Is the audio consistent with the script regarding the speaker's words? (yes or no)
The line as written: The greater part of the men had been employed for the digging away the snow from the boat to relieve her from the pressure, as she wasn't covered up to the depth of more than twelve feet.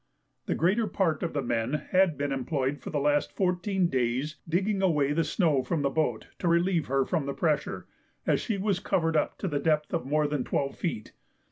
no